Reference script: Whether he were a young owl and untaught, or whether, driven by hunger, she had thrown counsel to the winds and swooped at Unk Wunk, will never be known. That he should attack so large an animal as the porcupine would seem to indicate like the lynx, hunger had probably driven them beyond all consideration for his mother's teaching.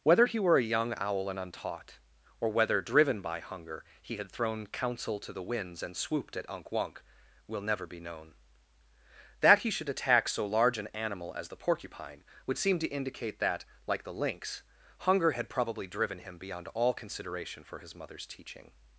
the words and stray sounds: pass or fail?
fail